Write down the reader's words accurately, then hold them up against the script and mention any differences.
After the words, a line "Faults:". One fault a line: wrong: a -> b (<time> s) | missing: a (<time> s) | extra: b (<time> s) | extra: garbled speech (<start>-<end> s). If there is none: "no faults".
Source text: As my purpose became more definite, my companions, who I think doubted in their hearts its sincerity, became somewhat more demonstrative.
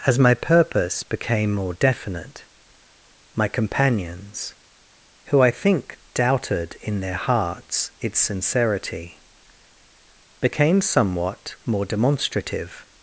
As my purpose became more definite, my companions, who I think doubted in their hearts its sincerity, became somewhat more demonstrative.
Faults:
no faults